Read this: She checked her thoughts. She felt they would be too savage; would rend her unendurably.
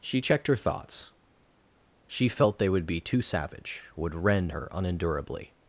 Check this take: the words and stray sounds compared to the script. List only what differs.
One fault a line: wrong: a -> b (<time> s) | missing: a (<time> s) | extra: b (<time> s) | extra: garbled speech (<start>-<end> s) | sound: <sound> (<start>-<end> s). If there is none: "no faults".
no faults